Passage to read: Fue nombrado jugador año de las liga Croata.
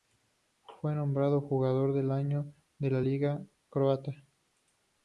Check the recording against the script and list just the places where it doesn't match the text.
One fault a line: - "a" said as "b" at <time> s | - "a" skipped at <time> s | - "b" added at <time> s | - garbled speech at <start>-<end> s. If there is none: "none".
- "del" added at 1.9 s
- "las" said as "la" at 2.9 s